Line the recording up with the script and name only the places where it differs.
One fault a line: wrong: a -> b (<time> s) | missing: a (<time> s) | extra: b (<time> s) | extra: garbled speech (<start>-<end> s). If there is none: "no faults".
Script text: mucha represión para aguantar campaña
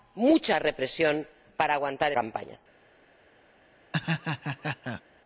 no faults